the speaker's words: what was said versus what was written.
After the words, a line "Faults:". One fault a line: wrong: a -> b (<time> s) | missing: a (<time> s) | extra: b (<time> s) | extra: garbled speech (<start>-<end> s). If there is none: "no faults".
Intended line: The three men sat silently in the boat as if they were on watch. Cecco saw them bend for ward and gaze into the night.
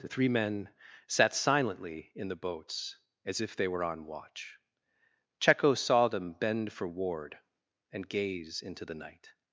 The three men sat silently in the boats as if they were on watch. Cecco saw them bend for ward and gaze into the night.
Faults:
wrong: boat -> boats (2.4 s)